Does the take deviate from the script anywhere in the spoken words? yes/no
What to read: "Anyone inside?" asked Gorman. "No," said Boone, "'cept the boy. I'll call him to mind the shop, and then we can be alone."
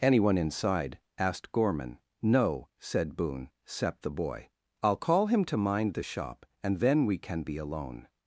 no